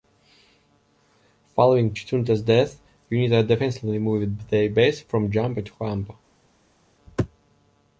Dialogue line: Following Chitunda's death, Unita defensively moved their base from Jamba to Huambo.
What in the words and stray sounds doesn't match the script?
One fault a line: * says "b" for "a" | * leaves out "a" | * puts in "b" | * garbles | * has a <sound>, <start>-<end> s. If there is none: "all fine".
all fine